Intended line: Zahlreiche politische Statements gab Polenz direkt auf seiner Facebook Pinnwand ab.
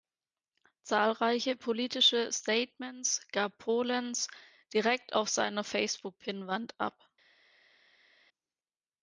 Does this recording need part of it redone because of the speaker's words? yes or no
no